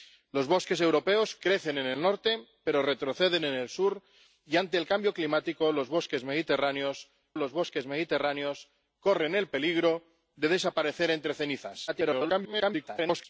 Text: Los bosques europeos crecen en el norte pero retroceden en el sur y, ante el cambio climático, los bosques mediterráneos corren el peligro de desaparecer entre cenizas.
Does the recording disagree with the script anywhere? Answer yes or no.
yes